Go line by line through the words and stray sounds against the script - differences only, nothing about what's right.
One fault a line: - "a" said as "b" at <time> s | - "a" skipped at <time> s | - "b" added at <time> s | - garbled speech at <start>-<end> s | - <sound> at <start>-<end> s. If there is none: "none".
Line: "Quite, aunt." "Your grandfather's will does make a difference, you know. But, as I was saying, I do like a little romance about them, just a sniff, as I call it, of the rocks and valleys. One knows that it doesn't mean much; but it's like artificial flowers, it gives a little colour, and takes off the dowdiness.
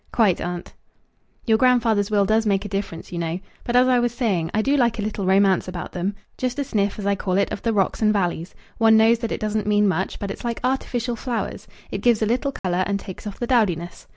- dropout at 12.6-12.6 s